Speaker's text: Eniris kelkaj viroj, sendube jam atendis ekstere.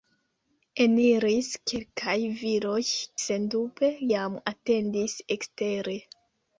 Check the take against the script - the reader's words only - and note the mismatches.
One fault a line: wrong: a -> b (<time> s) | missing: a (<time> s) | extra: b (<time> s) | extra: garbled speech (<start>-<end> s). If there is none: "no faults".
no faults